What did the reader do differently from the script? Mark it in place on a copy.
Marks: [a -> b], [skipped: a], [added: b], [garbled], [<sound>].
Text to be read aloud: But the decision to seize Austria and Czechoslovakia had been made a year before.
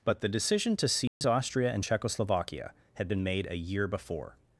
But the decision to seize [dropout] Austria and Czechoslovakia had been made a year before.